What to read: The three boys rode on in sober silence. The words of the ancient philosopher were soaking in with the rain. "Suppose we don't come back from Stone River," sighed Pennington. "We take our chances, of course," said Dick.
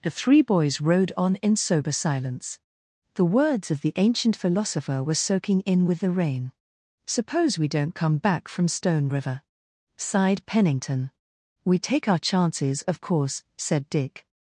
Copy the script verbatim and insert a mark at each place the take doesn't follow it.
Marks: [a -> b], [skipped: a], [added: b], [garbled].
The three boys rode on in sober silence. The words of the ancient philosopher were soaking in with the rain. "Suppose we don't come back from Stone River," sighed Pennington. "We take our chances, of course," said Dick.